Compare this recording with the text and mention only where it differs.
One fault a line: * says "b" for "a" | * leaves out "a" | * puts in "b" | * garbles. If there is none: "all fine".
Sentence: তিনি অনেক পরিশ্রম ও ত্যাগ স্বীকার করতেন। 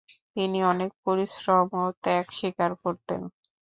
all fine